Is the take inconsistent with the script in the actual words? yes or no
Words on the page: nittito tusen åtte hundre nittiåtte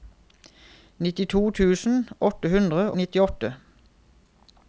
no